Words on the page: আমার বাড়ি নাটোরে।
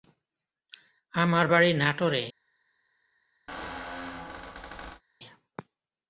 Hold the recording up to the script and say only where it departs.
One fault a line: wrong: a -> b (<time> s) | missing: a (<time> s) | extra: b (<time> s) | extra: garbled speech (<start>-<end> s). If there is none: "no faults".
no faults